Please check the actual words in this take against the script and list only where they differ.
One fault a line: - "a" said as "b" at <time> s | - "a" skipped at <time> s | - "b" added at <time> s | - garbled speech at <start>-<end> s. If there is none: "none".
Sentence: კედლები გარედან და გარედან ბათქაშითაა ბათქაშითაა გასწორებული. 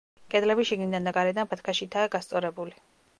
- "გარედან" said as "შიგნიდან" at 0.7 s
- "ბათქაშითაა" skipped at 2.1 s